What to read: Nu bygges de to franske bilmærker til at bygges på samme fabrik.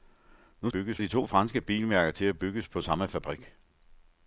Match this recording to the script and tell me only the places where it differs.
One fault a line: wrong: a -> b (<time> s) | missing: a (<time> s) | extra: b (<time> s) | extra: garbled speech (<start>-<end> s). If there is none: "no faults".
no faults